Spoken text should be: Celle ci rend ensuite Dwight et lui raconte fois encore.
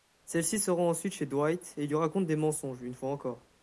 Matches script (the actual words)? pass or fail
fail